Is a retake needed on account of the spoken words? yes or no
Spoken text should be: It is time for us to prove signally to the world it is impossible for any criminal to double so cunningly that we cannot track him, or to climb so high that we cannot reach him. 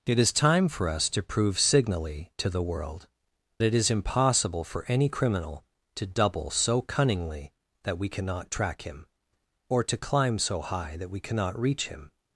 no